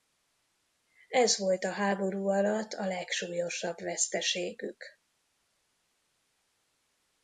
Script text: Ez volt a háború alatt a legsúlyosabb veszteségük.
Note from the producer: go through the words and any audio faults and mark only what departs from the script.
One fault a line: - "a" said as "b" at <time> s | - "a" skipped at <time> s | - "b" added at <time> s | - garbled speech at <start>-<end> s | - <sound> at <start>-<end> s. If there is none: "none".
none